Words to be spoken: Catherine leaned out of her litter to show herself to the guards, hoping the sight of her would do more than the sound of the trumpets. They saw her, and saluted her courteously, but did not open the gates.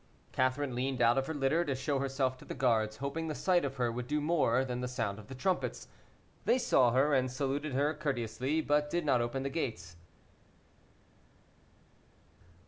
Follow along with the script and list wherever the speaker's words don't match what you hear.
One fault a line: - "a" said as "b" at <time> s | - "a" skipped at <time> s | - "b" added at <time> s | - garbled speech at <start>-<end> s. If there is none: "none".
none